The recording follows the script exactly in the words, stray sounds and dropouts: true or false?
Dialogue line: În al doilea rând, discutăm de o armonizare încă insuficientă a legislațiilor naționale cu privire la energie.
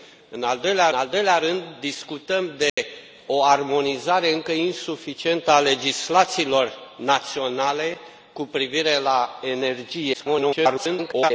false